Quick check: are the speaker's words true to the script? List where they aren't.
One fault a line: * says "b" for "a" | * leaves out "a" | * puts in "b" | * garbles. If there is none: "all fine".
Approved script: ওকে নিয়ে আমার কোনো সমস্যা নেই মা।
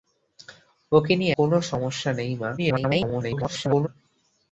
* leaves out "আমার"
* garbles